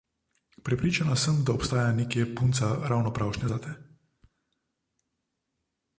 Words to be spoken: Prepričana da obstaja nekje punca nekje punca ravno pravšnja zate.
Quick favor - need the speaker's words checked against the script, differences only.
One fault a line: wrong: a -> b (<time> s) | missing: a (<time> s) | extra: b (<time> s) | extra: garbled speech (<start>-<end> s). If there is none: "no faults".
extra: sem (1.1 s)
missing: nekje punca (2.8 s)